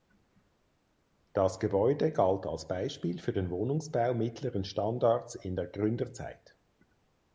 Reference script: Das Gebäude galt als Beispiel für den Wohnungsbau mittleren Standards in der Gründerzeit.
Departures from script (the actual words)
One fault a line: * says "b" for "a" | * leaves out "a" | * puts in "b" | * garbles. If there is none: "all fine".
all fine